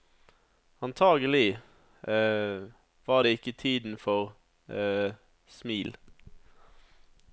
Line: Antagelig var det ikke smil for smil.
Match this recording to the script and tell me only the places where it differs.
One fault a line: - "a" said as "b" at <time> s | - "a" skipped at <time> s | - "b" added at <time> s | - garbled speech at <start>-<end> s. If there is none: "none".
- "smil" said as "tiden" at 3.5 s